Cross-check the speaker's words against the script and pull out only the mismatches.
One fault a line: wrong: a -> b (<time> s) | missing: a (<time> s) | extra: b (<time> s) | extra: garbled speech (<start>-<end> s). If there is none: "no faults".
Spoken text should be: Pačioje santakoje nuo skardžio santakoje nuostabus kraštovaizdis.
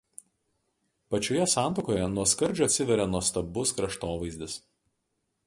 wrong: santakoje -> atsiveria (2.7 s)